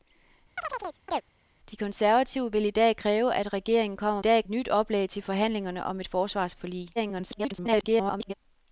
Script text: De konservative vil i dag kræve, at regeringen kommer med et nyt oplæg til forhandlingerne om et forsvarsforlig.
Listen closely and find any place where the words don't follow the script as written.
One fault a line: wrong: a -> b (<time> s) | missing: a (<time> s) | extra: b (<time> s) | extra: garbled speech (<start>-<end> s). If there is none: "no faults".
wrong: med -> dag (4.2 s)
extra: garbled speech (7.0-8.3 s)